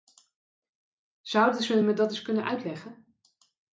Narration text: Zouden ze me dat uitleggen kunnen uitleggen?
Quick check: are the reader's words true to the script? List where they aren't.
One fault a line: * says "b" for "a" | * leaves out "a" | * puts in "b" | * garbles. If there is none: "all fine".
* says "eens" for "uitleggen"